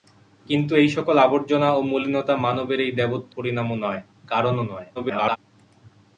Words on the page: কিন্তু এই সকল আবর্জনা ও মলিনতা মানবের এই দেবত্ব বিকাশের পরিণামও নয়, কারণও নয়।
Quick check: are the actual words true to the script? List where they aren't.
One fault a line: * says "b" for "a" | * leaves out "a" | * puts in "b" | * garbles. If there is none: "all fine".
* leaves out "বিকাশের"
* garbles